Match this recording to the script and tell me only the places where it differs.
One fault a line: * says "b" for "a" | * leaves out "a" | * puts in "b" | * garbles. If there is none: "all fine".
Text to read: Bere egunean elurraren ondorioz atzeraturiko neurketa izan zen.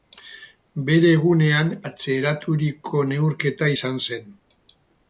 * leaves out "elurraren ondorioz"